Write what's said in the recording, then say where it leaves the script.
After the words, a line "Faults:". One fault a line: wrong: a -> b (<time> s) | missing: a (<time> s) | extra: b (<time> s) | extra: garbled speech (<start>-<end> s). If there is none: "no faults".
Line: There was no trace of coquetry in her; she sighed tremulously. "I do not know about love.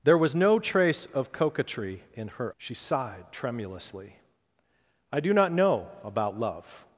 There was no trace of coquetry in her; she sighed tremulously. "I do not know about love.
Faults:
no faults